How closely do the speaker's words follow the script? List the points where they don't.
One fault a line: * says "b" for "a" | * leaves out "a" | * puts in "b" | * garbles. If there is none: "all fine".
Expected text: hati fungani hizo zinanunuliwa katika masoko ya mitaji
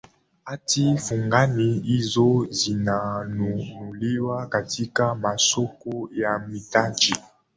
all fine